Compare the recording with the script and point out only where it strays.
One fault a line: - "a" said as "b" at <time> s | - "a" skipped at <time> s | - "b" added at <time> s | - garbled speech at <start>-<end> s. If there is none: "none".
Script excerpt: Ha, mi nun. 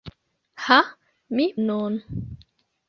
none